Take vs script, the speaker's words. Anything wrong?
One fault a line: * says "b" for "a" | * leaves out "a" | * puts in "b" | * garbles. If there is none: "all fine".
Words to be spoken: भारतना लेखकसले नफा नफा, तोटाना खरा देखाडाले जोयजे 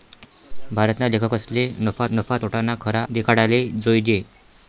all fine